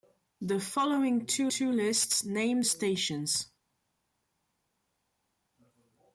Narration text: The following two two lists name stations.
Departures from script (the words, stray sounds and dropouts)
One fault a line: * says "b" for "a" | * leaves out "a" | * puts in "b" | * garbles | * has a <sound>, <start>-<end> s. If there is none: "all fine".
all fine